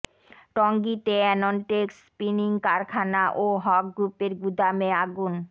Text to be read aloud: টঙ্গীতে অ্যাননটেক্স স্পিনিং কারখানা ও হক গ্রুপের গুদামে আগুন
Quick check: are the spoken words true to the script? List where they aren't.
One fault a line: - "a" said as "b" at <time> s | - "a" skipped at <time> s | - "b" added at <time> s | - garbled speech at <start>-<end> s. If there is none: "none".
none